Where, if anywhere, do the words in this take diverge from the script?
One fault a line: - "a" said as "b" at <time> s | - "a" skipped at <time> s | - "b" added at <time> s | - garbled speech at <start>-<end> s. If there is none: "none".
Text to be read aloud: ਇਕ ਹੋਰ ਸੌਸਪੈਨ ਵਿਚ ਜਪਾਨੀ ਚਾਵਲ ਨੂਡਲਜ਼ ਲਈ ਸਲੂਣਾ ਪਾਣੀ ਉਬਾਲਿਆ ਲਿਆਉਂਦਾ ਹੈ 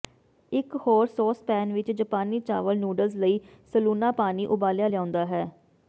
none